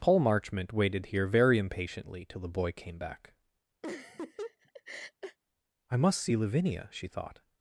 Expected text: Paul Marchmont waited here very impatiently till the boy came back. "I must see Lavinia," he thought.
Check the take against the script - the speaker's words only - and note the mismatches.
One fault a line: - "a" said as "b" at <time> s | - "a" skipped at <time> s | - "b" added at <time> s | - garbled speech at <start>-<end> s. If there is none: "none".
- "he" said as "she" at 6.9 s